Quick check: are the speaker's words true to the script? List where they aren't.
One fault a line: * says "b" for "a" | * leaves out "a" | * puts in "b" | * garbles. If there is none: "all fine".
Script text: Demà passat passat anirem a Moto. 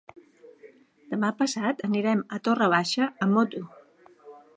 * leaves out "passat"
* puts in "Torre Baixa amb"